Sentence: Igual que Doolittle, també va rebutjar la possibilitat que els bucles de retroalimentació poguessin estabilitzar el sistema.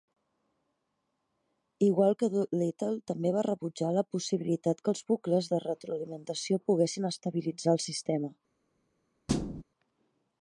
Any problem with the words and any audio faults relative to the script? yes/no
yes